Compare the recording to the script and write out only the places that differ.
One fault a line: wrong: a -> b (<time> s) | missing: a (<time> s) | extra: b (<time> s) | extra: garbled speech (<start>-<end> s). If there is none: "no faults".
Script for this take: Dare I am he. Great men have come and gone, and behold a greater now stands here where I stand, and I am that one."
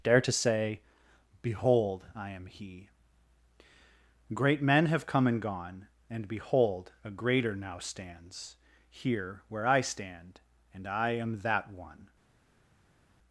extra: to say Behold (0.2 s)